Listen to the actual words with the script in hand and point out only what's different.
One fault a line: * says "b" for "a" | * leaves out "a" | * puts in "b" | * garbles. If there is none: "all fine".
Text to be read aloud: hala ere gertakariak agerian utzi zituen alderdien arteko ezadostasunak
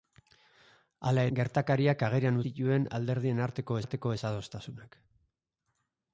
* leaves out "ere"
* leaves out "utzi"
* puts in "arteko"